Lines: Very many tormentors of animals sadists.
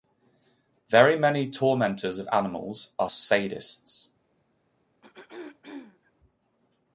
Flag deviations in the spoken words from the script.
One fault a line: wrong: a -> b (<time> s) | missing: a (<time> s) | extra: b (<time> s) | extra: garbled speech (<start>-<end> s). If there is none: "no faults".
extra: are (3.0 s)